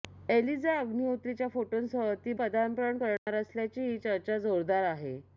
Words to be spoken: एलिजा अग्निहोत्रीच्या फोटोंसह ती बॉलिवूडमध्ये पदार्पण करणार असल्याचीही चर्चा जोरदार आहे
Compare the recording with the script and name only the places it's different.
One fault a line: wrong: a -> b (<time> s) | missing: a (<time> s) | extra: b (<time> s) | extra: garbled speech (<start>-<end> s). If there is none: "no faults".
missing: बॉलिवूडमध्ये (2.3 s)